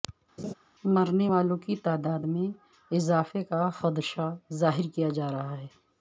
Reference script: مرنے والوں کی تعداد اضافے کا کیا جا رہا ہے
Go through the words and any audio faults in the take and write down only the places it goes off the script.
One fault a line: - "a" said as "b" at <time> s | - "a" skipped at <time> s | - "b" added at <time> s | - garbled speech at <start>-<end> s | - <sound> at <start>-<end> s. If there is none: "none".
- laugh at 0.4-0.5 s
- "میں" added at 2.2 s
- "خدشہ ظاہر" added at 3.8 s